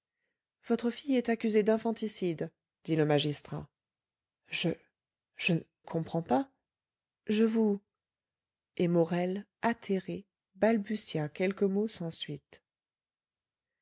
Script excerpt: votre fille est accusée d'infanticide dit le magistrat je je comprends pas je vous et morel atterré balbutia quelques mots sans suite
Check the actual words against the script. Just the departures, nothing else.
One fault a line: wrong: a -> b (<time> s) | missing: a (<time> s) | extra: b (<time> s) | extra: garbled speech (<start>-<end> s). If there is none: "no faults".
no faults